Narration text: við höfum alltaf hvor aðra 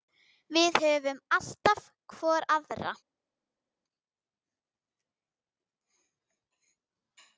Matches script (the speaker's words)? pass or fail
pass